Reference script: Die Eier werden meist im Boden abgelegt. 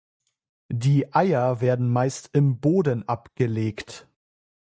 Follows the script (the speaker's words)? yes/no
yes